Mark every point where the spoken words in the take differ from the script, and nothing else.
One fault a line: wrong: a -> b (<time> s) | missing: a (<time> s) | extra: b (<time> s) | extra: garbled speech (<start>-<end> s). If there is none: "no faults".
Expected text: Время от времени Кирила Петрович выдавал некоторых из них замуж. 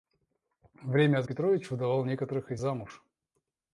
missing: времени Кирила (1.3 s)
missing: них (2.6 s)